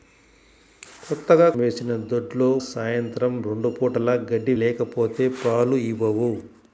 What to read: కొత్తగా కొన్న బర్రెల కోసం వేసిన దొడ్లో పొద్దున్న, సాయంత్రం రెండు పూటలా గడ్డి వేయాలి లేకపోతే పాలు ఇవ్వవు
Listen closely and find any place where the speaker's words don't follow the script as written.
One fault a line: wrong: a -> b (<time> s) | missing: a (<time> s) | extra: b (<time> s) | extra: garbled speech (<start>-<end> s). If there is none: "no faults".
missing: కొన్న బర్రెల కోసం (1.5 s)
missing: పొద్దున్న (2.5 s)
missing: వేయాలి (4.6 s)